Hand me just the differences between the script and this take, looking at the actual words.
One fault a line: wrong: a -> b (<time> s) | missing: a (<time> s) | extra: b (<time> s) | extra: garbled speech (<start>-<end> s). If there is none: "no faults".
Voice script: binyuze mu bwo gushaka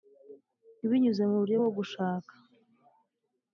extra: buryo (1.4 s)